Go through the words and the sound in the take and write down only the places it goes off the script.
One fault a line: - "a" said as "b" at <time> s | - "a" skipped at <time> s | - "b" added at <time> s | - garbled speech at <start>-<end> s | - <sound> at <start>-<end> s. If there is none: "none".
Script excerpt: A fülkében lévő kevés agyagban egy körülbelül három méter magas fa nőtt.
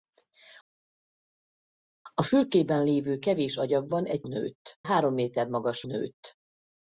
- "körülbelül" said as "nőtt" at 4.2 s
- "fa" skipped at 5.8 s